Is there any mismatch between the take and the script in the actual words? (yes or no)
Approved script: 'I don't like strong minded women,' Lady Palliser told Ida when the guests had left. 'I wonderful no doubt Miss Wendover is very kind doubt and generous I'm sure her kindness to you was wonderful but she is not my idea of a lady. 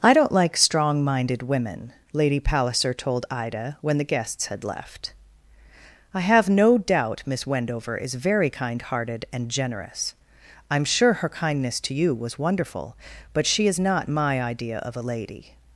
yes